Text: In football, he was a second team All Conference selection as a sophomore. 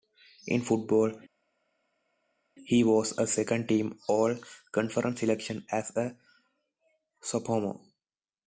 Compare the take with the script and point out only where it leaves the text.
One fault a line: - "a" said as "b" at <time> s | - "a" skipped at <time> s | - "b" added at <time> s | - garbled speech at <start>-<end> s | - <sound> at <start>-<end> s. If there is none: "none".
none